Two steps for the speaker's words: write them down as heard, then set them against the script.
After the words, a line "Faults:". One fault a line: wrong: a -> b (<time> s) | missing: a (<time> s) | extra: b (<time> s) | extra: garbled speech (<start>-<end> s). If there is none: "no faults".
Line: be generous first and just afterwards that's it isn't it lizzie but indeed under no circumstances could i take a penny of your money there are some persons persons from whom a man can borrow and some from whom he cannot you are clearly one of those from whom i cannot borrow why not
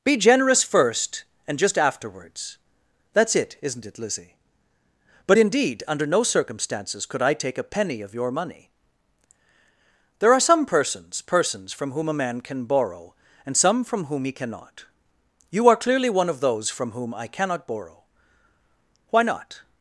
be generous first and just afterwards that's it isn't it lizzie but indeed under no circumstances could i take a penny of your money there are some persons persons from whom a man can borrow and some from whom he cannot you are clearly one of those from whom i cannot borrow why not
Faults:
no faults